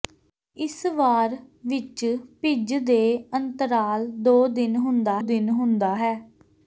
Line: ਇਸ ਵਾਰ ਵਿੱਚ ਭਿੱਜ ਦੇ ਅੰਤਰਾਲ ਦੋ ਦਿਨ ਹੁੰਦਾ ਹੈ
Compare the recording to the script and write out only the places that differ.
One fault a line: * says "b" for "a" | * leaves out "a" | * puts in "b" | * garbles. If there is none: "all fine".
* puts in "ਦਿਨ ਹੁੰਦਾ"